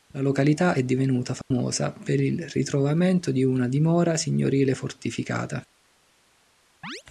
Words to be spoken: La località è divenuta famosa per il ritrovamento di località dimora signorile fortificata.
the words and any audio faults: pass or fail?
fail